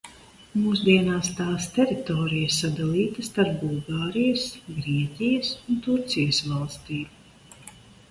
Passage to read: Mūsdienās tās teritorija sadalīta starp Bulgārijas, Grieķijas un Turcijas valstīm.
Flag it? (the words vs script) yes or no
no